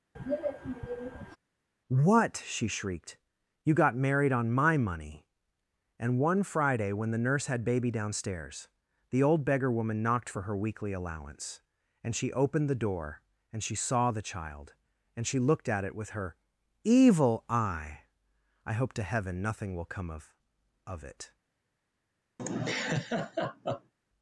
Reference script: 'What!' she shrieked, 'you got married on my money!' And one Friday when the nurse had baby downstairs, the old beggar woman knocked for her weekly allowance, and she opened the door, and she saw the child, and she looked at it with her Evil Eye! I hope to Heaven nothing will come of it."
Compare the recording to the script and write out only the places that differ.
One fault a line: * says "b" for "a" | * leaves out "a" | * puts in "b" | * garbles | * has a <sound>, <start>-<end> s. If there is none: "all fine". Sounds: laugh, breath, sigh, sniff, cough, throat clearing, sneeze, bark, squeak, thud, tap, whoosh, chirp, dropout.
* has a throat clearing, 0.1-1.4 s
* puts in "of"
* has a laugh, 22.4-23.9 s